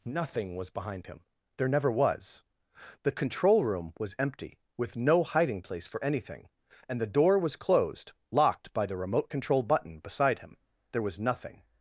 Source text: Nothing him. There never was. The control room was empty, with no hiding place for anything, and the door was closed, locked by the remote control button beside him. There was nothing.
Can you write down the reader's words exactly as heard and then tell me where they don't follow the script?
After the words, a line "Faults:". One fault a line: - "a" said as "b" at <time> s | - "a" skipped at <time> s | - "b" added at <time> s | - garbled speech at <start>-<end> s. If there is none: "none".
Nothing was behind him. There never was. The control room was empty, with no hiding place for anything, and the door was closed, locked by the remote control button beside him. There was nothing.
Faults:
- "was behind" added at 0.6 s